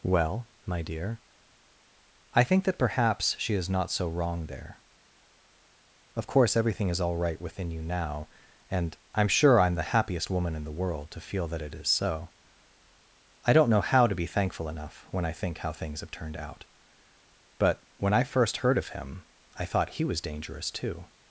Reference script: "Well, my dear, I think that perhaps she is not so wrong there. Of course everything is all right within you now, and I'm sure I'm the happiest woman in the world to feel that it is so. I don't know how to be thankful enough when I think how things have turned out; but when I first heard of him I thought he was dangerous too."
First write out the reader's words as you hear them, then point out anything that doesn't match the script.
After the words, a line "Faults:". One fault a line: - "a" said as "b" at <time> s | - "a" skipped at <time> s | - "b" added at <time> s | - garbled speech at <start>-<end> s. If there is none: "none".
"Well, my dear, I think that perhaps she is not so wrong there. Of course everything is all right within you now, and I'm sure I'm the happiest woman in the world to feel that it is so. I don't know how to be thankful enough when I think how things have turned out; but when I first heard of him I thought he was dangerous too."
Faults:
none